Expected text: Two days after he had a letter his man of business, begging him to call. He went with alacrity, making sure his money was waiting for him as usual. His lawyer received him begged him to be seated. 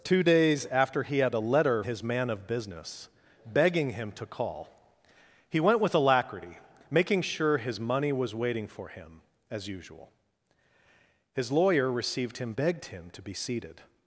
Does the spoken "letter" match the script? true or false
true